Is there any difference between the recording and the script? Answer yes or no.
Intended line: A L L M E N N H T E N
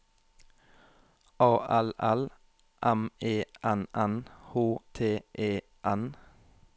no